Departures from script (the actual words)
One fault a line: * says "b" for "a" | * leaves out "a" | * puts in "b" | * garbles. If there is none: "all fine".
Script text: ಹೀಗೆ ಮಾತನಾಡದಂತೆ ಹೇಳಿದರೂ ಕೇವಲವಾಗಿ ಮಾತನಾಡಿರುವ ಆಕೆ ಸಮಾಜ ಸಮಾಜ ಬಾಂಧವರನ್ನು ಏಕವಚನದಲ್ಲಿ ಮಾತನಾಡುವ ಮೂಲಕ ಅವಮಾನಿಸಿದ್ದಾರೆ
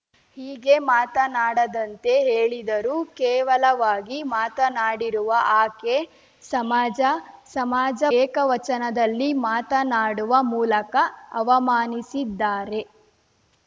* leaves out "ಬಾಂಧವರನ್ನು"